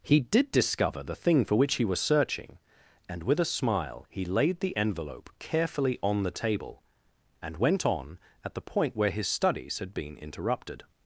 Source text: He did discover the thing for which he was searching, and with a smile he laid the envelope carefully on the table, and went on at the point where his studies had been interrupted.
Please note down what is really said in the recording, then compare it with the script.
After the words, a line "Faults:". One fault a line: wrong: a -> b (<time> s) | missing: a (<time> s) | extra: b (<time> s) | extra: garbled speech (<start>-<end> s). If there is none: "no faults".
He did discover the thing for which he was searching, and with a smile he laid the envelope carefully on the table, and went on at the point where his studies had been interrupted.
Faults:
no faults